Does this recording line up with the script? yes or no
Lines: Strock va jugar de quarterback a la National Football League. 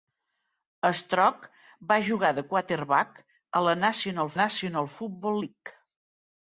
no